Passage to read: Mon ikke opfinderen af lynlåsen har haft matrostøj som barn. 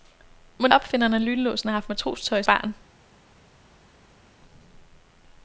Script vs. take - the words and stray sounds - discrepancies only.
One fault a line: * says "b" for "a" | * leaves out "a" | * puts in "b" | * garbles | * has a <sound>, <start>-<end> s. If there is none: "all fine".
* leaves out "ikke"
* leaves out "som"